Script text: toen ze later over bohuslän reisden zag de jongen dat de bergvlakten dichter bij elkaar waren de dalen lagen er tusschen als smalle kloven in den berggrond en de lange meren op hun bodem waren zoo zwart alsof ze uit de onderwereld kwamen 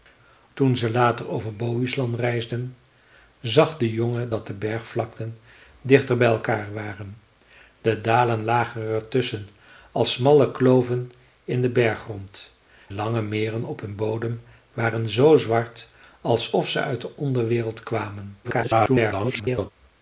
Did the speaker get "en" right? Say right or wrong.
wrong